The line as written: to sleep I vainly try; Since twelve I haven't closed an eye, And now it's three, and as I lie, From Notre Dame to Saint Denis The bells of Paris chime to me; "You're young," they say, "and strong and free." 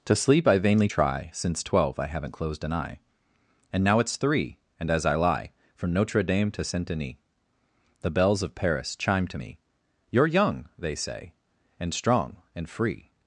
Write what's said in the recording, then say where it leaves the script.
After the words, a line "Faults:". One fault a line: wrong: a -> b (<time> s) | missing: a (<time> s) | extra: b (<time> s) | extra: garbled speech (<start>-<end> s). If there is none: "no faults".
to sleep I vainly try; Since twelve I haven't closed an eye, And now it's three, and as I lie, From Notre Dame to Saint Denis The bells of Paris chime to me; "You're young," they say, "and strong and free."
Faults:
no faults